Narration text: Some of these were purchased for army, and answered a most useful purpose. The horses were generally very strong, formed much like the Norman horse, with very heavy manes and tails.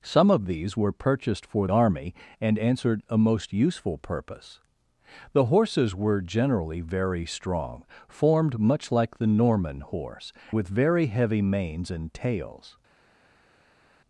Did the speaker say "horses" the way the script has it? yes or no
yes